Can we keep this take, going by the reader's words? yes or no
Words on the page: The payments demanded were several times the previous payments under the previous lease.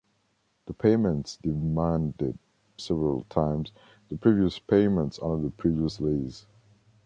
no